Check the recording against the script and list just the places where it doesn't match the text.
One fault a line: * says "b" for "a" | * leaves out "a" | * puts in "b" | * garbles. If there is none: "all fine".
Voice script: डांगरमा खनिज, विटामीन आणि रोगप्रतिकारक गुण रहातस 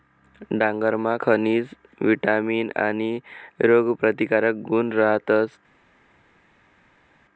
all fine